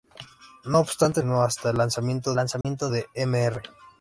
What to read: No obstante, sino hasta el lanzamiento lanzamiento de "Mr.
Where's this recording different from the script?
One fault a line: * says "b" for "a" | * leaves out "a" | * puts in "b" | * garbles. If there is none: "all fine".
all fine